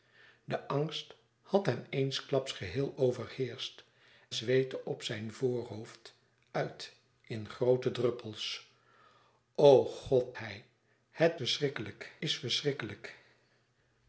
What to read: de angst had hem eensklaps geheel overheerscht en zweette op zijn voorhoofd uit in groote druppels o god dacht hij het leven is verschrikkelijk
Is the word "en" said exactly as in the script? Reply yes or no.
no